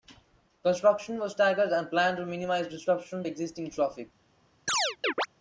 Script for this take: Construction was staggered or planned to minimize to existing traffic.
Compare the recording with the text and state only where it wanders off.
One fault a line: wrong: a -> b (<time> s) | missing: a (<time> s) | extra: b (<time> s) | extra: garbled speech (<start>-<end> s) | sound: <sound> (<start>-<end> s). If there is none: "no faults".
wrong: or -> and (1.7 s)
extra: disruption (2.7 s)
sound: chirp (4.7-5.3 s)